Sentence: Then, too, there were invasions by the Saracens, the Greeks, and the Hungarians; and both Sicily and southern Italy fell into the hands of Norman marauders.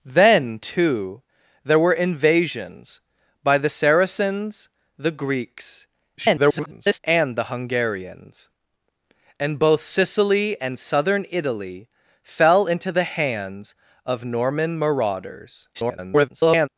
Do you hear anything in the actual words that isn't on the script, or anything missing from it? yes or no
yes